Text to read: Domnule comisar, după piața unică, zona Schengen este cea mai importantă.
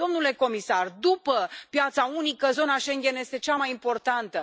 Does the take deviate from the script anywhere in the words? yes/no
no